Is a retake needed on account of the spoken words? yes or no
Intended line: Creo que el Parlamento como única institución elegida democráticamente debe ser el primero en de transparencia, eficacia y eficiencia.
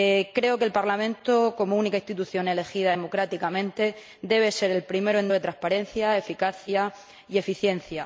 no